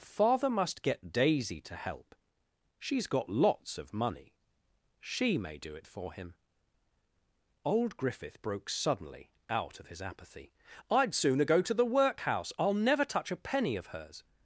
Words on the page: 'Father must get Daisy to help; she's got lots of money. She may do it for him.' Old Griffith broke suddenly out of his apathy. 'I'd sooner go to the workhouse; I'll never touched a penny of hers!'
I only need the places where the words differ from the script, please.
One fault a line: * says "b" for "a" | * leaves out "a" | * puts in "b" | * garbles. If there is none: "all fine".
* says "touch" for "touched"